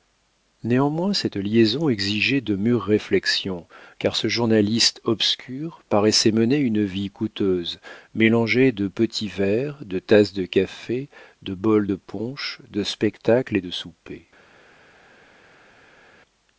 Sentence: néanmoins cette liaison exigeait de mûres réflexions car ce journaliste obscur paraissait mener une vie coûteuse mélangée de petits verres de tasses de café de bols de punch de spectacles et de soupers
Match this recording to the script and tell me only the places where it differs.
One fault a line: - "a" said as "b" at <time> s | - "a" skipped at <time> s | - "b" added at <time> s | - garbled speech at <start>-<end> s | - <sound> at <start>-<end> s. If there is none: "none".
none